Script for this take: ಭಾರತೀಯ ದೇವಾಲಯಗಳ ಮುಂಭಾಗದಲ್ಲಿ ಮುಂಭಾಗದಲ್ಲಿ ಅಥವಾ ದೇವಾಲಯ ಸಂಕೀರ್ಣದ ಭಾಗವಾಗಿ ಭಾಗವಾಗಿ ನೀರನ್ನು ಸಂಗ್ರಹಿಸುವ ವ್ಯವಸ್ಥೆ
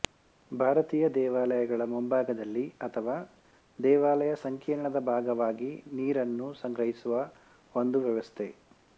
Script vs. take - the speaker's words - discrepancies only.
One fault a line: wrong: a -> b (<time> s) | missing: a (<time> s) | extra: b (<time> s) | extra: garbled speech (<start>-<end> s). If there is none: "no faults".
missing: ಮುಂಭಾಗದಲ್ಲಿ (2.6 s)
missing: ಭಾಗವಾಗಿ (5.7 s)
extra: ಒಂದು (7.7 s)